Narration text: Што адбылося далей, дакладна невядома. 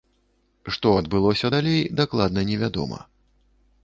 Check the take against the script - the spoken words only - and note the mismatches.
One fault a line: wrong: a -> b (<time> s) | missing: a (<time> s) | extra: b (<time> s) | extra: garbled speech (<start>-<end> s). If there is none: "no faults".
no faults